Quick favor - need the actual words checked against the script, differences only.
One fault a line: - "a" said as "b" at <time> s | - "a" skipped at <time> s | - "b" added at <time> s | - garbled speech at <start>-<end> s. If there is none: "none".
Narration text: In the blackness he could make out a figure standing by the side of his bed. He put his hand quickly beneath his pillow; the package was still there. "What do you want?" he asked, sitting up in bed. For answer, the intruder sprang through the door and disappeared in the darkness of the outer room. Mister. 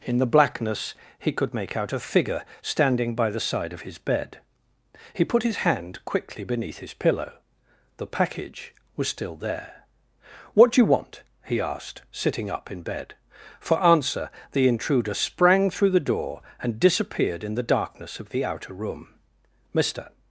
none